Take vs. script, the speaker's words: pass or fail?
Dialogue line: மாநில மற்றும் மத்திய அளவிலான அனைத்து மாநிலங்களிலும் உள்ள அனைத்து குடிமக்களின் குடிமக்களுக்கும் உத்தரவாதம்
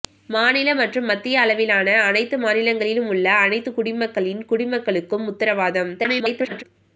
fail